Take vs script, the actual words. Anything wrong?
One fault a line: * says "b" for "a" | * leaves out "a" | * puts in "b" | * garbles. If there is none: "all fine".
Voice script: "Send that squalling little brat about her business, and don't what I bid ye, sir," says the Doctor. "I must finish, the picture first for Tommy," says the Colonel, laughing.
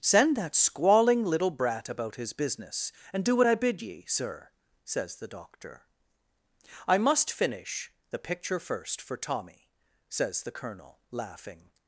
* says "his" for "her"
* says "do" for "don't"